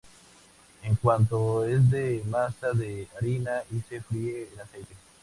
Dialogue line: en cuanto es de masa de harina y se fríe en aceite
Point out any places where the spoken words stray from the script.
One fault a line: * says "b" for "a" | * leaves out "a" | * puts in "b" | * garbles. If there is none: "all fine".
all fine